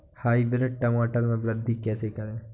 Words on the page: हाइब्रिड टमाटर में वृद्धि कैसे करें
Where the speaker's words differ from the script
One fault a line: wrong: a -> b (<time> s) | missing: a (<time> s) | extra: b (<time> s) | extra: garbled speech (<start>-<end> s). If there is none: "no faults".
no faults